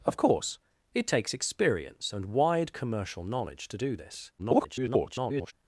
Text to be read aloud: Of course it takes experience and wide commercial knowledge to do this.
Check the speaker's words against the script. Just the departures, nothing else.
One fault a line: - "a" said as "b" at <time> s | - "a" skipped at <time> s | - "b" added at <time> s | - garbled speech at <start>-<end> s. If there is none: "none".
- garbled speech at 4.4-5.5 s